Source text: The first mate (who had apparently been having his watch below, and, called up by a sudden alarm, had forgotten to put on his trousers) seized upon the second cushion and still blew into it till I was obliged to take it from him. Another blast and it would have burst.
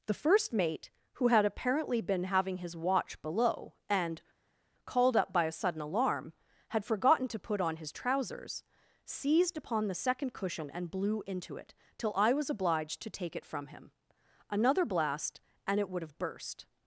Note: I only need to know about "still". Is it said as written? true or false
false